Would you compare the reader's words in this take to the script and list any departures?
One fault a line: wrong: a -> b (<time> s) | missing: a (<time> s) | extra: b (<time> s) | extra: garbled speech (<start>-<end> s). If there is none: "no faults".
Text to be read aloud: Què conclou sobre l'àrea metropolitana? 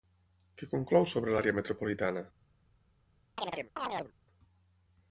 no faults